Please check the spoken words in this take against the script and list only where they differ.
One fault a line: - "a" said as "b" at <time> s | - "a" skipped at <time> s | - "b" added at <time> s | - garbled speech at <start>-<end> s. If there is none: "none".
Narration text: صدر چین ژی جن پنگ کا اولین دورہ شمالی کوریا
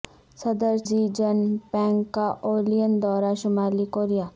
- "چین" skipped at 0.8 s